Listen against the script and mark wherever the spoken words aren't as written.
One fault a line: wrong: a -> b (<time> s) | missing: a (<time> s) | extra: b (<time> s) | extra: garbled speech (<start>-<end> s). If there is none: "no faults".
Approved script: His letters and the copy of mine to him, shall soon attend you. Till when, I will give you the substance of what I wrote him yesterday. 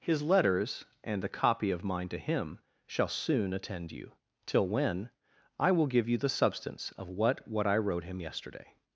extra: what (7.5 s)